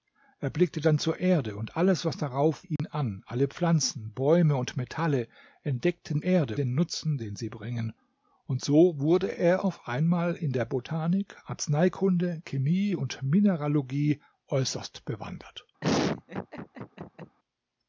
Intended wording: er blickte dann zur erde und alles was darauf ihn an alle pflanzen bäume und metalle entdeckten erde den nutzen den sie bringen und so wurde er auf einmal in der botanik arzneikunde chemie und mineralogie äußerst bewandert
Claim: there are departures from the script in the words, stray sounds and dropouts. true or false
true